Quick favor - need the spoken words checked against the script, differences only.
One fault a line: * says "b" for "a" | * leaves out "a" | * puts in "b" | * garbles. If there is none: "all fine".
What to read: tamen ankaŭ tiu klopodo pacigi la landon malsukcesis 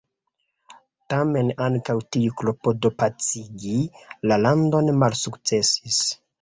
all fine